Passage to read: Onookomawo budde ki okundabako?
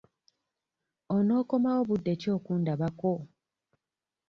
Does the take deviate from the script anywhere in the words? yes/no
no